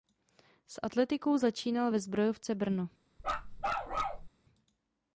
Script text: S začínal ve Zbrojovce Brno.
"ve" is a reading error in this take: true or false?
false